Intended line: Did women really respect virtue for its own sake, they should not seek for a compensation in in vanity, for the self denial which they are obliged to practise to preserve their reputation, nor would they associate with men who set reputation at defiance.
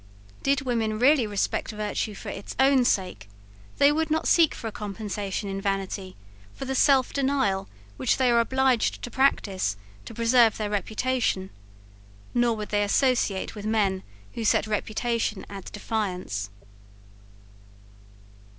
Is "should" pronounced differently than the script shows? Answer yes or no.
yes